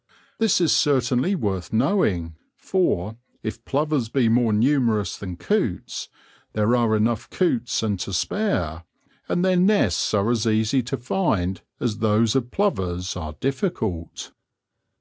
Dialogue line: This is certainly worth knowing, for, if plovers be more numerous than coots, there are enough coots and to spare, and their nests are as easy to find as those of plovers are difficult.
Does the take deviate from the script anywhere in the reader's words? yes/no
no